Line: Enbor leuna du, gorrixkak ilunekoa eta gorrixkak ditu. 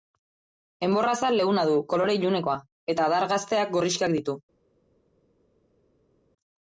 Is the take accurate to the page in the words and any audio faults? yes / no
no